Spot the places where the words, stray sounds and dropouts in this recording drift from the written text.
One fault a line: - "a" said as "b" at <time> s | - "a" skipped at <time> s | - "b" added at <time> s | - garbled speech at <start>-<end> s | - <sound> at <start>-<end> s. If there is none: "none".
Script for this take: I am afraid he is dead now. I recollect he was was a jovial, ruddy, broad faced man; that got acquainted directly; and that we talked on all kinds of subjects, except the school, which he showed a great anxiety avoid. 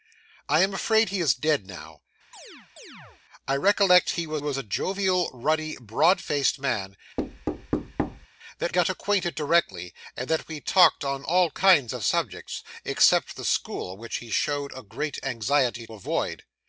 - chirp at 2.3-3.2 s
- thud at 7.2-8.3 s